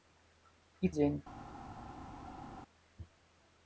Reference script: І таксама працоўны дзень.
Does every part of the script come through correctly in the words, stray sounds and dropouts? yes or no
no